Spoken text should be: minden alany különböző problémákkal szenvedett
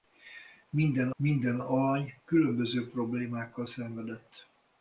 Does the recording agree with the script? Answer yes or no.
no